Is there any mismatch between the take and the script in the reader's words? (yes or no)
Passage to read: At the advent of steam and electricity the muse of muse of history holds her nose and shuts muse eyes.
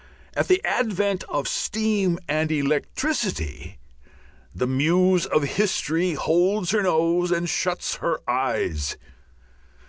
yes